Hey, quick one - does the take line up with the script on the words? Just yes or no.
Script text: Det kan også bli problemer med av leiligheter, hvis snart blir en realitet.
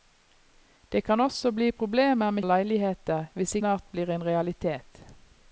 yes